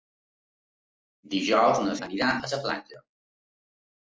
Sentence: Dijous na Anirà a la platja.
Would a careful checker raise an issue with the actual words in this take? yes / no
no